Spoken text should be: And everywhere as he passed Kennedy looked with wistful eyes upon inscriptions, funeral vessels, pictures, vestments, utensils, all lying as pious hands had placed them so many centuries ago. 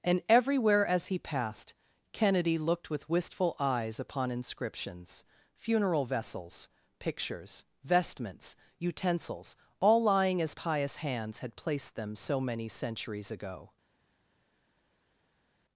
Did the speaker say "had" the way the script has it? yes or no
yes